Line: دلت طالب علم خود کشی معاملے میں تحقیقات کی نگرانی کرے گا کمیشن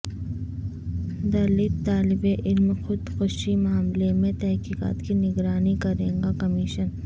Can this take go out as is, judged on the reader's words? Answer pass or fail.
pass